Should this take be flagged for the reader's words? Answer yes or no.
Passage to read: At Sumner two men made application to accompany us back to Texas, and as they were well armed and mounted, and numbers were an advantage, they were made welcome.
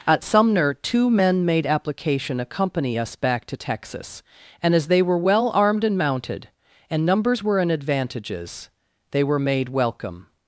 yes